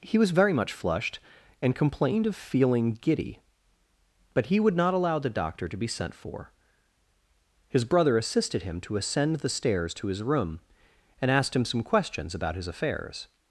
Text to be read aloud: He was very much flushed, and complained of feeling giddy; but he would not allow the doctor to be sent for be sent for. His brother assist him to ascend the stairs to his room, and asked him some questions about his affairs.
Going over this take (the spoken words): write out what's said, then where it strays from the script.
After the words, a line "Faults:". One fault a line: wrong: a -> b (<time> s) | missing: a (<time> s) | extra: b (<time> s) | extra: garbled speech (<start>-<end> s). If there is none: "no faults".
He was very much flushed, and complained of feeling giddy; but he would not allow the doctor to be sent for. His brother assisted him to ascend the stairs to his room, and asked him some questions about his affairs.
Faults:
missing: be sent for (6.5 s)
wrong: assist -> assisted (8.2 s)